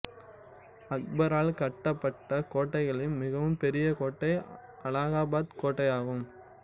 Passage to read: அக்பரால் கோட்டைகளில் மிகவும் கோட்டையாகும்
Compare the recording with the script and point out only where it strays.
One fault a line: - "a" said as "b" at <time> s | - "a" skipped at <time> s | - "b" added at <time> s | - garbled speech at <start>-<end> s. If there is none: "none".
- "கட்டப்பட்ட" added at 1.6 s
- "பெரிய கோட்டை அலகாபாத்" added at 3.6 s